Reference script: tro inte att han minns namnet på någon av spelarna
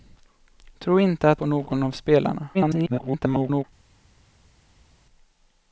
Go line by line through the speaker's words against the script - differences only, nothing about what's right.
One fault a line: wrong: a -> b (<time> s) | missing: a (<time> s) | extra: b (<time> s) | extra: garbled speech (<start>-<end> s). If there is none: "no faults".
missing: han minns namnet (1.4 s)
extra: garbled speech (2.5-3.6 s)